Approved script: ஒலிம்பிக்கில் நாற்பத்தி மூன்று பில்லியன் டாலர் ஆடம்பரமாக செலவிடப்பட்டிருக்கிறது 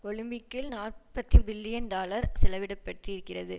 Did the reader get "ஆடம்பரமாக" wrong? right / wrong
wrong